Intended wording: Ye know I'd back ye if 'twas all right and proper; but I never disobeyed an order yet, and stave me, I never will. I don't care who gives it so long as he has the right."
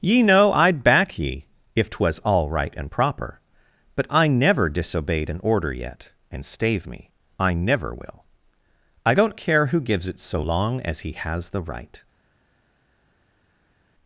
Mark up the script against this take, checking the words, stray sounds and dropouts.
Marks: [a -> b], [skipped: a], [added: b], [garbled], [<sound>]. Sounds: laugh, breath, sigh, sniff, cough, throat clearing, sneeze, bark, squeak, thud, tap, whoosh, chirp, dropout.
Ye know I'd back ye if 'twas all right and proper; but I never disobeyed an order yet, and stave me, I never will. I don't care who gives it so long as he has the right."